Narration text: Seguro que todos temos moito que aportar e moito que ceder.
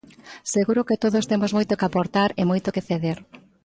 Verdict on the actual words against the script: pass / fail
pass